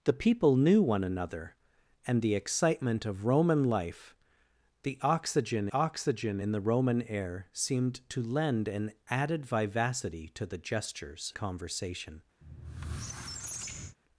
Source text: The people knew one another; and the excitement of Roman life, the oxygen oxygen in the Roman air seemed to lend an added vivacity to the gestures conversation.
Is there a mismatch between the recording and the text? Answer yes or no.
no